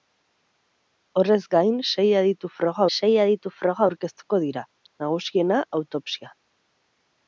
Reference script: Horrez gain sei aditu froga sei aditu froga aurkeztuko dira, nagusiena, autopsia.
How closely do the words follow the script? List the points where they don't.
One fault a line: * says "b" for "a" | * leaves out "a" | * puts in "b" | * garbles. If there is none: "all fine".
all fine